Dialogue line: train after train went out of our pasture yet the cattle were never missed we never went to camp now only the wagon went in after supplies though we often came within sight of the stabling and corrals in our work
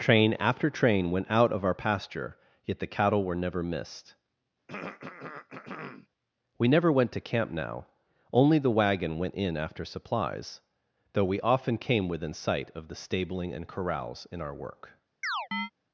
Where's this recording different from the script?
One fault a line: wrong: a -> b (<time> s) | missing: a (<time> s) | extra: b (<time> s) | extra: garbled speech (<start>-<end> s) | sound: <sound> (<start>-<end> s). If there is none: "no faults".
sound: throat clearing (4.7-6.1 s)
sound: chirp (15.2-15.7 s)